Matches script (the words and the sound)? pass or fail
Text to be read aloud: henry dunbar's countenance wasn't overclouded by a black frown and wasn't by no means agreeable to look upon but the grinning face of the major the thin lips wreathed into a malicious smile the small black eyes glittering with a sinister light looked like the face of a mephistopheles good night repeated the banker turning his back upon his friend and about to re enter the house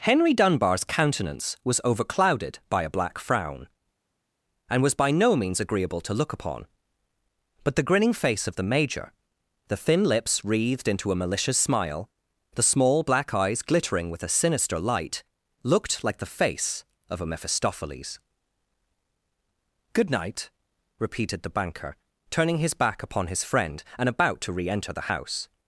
fail